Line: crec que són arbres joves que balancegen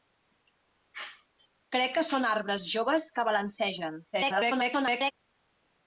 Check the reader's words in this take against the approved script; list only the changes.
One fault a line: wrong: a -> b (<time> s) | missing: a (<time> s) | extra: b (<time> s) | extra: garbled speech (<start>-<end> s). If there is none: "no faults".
extra: garbled speech (4.1-5.1 s)